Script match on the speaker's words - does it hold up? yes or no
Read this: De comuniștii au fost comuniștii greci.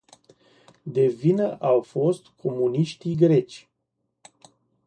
no